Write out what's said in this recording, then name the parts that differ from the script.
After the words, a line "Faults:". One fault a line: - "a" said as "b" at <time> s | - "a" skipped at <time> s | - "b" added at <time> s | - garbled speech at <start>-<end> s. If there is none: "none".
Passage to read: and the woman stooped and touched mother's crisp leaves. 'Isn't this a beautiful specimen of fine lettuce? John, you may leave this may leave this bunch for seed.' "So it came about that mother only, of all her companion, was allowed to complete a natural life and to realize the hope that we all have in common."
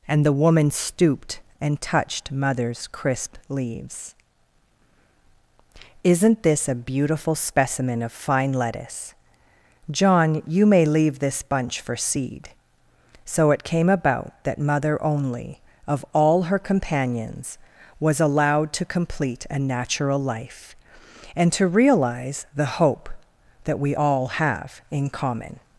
and the woman stooped and touched mother's crisp leaves. 'Isn't this a beautiful specimen of fine lettuce? John, you may leave this bunch for seed.' "So it came about that mother only, of all her companions, was allowed to complete a natural life and to realize the hope that we all have in common."
Faults:
- "may leave this" skipped at 11.4 s
- "companion" said as "companions" at 16.6 s